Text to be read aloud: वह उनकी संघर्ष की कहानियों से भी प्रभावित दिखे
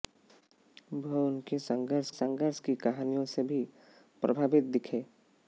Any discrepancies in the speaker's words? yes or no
yes